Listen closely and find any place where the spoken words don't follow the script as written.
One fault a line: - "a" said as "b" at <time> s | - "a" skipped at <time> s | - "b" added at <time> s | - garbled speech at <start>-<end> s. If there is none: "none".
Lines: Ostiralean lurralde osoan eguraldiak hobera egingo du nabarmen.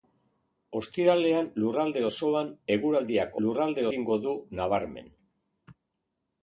- "hobera" said as "lurralde" at 3.5 s